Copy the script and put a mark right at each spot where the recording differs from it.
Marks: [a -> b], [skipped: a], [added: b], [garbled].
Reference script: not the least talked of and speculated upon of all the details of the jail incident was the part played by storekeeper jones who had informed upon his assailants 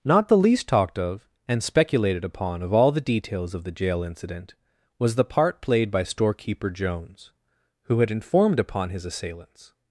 not the least talked of and speculated upon of all the details of the jail incident was the part played by storekeeper jones who had informed upon his assailants